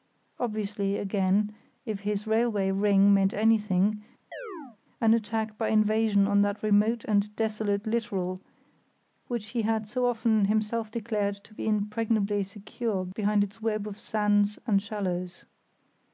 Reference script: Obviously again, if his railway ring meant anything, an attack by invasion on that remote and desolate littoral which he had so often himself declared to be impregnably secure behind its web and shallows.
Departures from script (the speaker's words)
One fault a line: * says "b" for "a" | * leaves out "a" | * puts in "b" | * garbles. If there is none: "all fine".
* puts in "of sands"